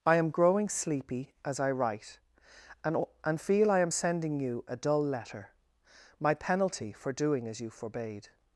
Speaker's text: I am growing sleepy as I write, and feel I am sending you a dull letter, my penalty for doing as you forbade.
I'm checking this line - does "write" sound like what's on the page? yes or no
yes